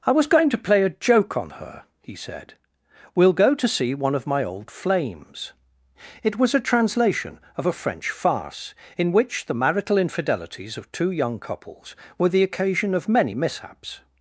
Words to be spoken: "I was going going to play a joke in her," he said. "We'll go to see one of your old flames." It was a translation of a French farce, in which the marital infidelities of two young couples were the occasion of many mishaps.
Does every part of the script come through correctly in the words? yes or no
no